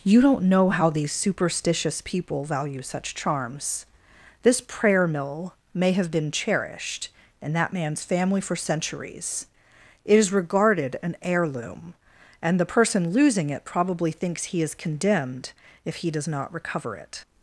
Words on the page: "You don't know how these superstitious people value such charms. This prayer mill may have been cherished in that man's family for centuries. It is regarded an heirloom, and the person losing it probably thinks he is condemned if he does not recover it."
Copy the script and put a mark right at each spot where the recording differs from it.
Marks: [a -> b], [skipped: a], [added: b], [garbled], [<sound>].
"You don't know how these superstitious people value such charms. This prayer mill may have been cherished in that man's family for centuries. It is regarded an heirloom, and the person losing it probably thinks he is condemned if he does not recover it."